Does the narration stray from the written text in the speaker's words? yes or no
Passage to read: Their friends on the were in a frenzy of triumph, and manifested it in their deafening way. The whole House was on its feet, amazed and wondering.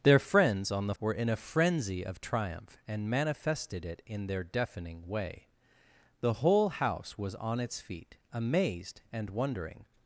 no